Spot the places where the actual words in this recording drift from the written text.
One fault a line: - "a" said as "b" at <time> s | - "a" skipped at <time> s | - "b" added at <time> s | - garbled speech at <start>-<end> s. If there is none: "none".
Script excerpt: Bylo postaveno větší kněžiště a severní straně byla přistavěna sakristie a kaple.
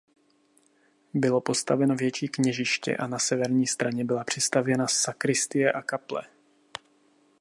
- "na" added at 3.1 s